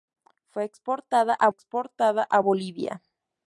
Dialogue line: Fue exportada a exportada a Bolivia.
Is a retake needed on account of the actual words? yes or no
no